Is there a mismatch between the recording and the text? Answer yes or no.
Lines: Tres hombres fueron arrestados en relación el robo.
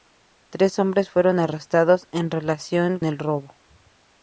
no